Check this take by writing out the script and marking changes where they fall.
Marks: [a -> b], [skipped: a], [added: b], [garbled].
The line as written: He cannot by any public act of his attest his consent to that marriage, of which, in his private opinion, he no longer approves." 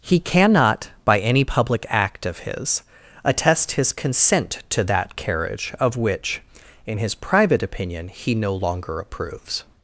He cannot by any public act of his attest his consent to that [marriage, -> carriage] of which, in his private opinion, he no longer approves."